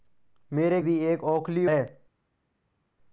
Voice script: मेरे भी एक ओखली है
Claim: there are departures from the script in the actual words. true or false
false